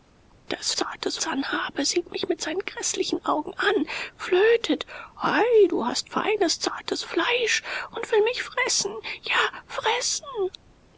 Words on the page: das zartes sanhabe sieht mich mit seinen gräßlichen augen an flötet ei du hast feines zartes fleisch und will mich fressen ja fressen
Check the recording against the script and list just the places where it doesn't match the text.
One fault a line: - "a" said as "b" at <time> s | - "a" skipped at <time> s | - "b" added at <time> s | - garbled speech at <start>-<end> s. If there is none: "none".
none